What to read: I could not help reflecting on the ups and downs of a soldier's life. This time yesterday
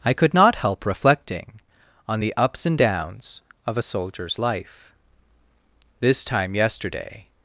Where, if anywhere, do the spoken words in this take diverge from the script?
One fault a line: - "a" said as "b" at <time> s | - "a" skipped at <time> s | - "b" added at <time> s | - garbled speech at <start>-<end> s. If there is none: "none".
none